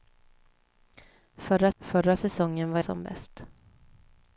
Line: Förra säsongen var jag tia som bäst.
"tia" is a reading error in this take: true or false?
true